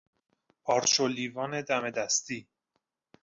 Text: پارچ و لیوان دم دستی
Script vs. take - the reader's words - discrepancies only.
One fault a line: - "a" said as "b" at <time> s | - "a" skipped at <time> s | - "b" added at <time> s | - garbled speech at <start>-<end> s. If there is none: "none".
none